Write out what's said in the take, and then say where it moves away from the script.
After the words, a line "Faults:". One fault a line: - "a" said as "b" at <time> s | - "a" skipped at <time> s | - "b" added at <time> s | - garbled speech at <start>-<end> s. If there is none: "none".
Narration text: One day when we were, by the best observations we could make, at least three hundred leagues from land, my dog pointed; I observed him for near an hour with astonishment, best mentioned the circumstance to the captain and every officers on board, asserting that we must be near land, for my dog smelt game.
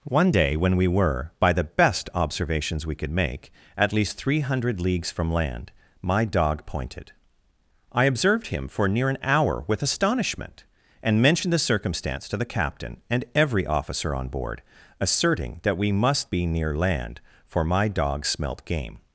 One day when we were, by the best observations we could make, at least three hundred leagues from land, my dog pointed; I observed him for near an hour with astonishment, and mentioned the circumstance to the captain and every officer on board, asserting that we must be near land, for my dog smelt game.
Faults:
- "best" said as "and" at 11.0 s
- "officers" said as "officer" at 13.7 s